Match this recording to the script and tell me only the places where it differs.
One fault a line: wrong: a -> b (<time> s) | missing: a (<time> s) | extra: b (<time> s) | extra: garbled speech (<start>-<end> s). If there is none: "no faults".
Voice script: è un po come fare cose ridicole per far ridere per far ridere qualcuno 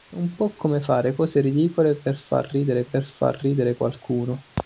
no faults